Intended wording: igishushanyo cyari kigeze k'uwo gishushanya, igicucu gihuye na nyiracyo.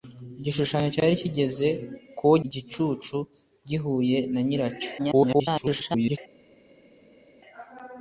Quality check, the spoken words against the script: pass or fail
fail